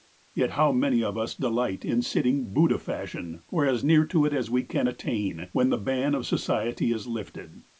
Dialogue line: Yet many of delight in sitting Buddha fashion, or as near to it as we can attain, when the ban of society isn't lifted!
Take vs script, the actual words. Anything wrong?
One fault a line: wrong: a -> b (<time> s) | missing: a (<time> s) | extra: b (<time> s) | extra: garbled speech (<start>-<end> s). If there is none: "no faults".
extra: how (0.6 s)
extra: us (1.1 s)
wrong: isn't -> is (6.9 s)